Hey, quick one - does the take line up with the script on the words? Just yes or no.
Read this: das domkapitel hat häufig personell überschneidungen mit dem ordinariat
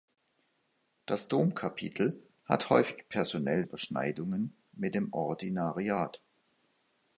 yes